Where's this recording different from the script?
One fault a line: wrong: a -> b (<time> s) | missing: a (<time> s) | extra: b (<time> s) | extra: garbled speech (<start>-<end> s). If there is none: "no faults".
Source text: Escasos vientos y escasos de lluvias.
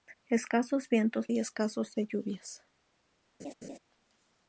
no faults